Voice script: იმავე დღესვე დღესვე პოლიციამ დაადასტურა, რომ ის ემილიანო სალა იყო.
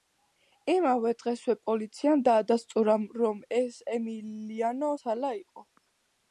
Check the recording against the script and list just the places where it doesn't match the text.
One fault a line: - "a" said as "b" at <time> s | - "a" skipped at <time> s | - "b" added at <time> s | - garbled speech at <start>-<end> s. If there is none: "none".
- "დღესვე" skipped at 1.6 s
- "ის" said as "ეს" at 3.6 s